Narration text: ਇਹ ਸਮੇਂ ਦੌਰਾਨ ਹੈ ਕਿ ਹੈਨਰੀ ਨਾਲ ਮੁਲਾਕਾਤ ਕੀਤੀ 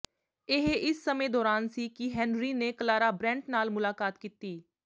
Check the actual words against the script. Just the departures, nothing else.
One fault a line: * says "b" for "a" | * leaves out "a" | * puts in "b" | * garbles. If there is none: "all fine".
* puts in "ਇਸ"
* says "ਸੀ" for "ਹੈ"
* puts in "ਨੇ ਕਲਾਰਾ ਬ੍ਰੈੰਟ"